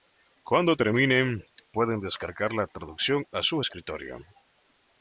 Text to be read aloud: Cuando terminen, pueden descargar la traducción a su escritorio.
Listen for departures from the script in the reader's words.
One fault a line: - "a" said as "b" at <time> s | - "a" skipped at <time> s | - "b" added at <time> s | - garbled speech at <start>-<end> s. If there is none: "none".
none